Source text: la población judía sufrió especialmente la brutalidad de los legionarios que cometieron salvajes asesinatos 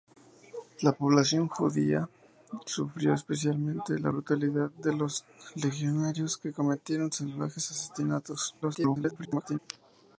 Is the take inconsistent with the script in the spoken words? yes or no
yes